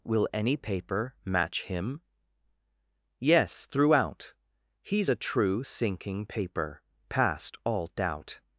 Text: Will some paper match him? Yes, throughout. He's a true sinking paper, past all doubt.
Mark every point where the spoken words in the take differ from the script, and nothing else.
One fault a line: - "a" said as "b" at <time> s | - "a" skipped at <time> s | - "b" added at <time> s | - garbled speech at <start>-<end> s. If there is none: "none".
- "some" said as "any" at 0.3 s